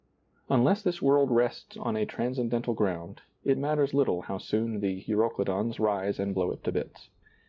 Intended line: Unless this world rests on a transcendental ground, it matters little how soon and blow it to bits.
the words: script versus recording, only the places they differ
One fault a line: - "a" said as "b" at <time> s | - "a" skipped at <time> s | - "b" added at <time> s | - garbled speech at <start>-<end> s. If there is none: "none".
- "the euroclydons rise" added at 4.8 s